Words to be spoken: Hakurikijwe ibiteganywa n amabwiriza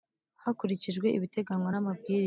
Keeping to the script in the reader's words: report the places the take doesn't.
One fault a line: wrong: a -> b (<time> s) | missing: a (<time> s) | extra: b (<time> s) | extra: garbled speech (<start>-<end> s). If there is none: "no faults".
no faults